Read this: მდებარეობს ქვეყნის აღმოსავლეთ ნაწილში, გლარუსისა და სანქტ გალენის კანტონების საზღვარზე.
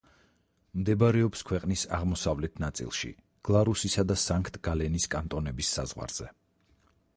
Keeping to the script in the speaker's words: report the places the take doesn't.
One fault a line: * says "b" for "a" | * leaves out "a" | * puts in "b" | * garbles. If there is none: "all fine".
all fine